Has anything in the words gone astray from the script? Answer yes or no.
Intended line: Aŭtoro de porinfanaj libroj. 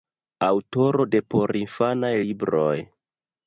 no